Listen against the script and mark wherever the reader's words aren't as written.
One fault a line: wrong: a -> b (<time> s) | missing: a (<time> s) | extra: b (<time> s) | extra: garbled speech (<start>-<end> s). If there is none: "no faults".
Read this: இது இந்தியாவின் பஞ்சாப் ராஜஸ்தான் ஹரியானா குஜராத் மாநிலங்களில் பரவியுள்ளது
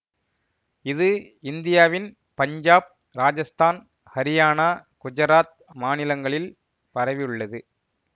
no faults